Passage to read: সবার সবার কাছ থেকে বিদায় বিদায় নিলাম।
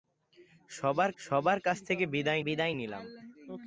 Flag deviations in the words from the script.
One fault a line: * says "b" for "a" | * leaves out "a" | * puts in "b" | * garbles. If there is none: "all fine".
all fine